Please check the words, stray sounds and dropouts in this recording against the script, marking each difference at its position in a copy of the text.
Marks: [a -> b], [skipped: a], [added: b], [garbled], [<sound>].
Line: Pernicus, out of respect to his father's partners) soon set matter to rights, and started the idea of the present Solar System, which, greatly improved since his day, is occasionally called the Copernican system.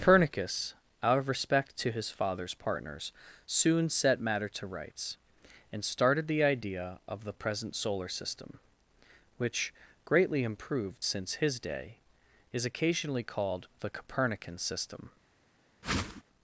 Pernicus, out of respect to his father's partners) soon set matter to rights, and started the idea of the present Solar System, which, greatly improved since his day, is occasionally called the Copernican system. [whoosh]